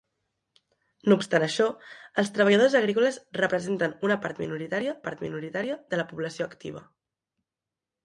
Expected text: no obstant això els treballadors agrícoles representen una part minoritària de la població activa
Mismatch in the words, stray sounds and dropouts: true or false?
true